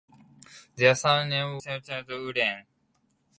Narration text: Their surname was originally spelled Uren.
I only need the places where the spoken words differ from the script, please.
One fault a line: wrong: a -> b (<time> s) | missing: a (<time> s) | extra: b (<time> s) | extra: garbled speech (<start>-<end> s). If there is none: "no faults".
missing: was originally (1.6 s)